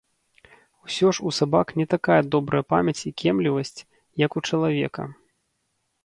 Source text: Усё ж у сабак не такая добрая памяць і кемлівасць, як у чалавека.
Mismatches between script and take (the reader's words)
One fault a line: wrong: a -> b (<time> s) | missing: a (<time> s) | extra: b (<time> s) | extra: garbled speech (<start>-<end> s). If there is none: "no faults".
no faults